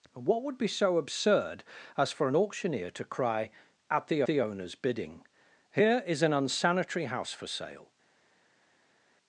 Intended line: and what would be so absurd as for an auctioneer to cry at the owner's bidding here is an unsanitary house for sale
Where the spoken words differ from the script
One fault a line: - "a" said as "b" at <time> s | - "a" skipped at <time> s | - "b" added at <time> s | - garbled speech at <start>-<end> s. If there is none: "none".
- "the" added at 4.2 s